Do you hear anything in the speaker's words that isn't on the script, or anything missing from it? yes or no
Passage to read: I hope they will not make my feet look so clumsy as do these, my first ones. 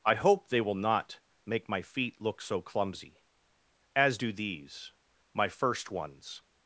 no